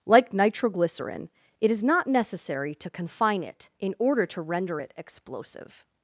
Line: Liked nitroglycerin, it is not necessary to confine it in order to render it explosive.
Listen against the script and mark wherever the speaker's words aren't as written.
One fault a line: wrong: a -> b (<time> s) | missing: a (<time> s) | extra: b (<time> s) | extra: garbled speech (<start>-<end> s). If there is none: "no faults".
wrong: Liked -> Like (0.1 s)